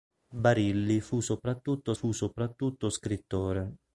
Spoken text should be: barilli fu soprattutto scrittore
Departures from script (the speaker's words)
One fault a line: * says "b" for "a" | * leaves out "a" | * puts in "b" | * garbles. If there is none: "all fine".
* puts in "fu soprattutto"